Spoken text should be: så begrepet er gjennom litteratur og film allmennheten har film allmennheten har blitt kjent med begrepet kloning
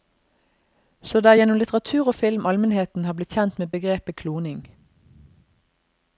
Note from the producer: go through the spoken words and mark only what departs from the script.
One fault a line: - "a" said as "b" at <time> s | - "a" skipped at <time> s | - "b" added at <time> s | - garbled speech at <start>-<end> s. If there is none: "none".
- "begrepet" said as "det" at 1.2 s
- "film allmennheten har" skipped at 3.2 s